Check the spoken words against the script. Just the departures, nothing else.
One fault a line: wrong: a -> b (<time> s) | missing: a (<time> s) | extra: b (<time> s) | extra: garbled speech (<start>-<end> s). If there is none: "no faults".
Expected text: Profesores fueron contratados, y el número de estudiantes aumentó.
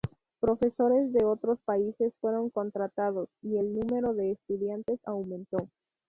extra: de otros países (1.1 s)